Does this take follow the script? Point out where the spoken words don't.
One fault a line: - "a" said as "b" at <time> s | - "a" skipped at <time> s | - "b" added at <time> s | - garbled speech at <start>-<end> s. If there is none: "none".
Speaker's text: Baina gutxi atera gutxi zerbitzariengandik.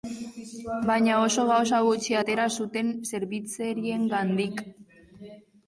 - "oso gauza" added at 1.2 s
- "gutxi" said as "zuten" at 2.6 s